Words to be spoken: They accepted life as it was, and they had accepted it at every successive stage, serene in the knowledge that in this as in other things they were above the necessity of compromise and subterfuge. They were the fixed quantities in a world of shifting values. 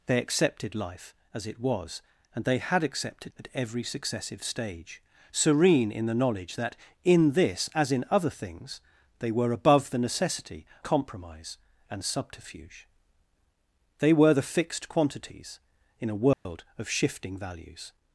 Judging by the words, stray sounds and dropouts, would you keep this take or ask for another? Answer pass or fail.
fail